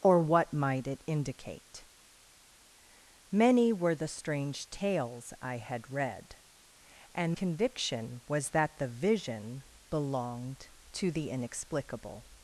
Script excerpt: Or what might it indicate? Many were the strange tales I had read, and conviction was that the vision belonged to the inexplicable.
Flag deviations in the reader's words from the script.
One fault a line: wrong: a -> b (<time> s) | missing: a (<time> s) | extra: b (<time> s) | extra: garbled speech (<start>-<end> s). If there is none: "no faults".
no faults